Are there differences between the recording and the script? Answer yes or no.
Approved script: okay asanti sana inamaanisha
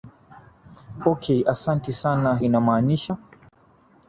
no